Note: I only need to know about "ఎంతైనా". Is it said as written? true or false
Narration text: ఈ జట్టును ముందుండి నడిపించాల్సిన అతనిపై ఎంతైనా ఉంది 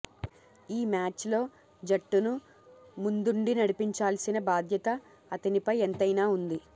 true